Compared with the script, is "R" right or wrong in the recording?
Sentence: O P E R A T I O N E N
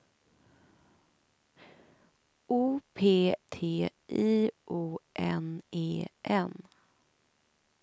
wrong